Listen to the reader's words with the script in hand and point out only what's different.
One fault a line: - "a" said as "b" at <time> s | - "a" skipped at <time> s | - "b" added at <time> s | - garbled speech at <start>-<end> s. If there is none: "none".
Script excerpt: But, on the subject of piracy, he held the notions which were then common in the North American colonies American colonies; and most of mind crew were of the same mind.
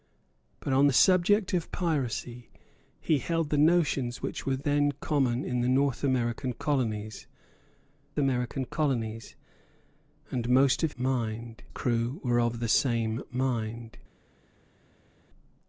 none